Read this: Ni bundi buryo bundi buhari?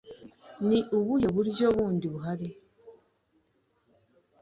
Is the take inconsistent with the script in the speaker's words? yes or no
yes